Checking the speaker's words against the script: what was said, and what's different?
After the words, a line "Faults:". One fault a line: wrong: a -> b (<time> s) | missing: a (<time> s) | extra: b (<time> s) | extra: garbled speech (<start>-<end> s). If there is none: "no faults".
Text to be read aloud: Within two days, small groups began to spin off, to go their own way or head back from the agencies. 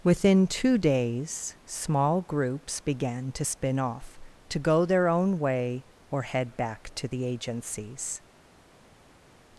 Within two days, small groups began to spin off, to go their own way or head back to the agencies.
Faults:
wrong: from -> to (7.0 s)